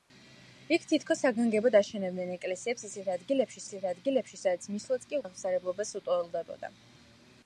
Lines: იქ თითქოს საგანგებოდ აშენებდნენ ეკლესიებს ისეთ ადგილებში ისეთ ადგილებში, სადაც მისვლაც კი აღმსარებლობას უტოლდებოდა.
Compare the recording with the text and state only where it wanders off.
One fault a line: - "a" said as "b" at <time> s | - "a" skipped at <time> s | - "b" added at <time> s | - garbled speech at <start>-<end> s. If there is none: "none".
none